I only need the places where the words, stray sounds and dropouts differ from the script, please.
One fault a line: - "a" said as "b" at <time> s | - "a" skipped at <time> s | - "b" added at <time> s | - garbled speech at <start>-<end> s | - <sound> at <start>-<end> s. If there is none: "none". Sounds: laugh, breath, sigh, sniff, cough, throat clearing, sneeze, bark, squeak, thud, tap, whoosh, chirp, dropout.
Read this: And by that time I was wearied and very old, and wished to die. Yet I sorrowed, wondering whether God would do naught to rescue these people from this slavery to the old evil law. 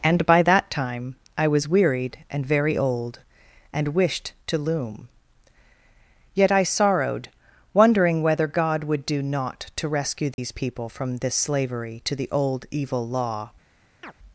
- "die" said as "loom" at 4.6 s
- dropout at 10.3-10.4 s
- chirp at 14.0-14.1 s